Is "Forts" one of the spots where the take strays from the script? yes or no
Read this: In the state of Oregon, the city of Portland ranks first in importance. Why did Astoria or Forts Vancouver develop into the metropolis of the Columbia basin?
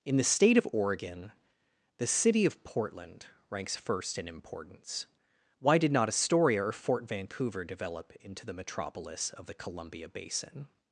yes